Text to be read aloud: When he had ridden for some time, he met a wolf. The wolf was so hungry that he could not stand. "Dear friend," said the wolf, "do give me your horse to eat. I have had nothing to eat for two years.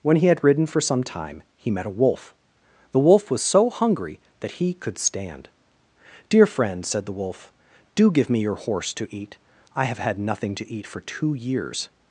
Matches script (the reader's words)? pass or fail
fail